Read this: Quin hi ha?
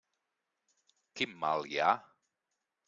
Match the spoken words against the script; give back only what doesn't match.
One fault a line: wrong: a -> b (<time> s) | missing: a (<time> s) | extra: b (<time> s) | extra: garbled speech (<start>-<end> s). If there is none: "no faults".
extra: mal (1.4 s)